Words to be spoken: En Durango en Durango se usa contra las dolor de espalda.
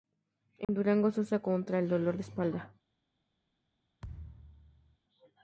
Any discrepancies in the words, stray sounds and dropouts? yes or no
yes